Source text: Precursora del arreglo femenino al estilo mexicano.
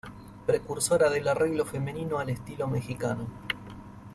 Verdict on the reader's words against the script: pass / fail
pass